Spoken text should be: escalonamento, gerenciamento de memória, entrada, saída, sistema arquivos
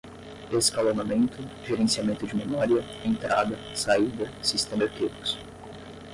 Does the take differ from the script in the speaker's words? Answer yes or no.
no